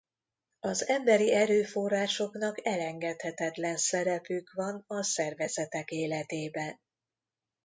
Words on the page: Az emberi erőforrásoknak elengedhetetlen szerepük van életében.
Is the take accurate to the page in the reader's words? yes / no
no